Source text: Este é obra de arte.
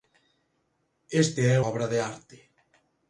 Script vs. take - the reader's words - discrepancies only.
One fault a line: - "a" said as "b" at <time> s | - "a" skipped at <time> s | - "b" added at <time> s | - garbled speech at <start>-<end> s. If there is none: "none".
none